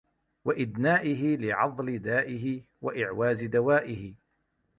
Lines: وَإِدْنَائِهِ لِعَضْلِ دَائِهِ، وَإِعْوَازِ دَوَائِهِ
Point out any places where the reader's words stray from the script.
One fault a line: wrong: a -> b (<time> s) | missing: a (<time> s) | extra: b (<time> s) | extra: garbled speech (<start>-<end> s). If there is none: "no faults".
no faults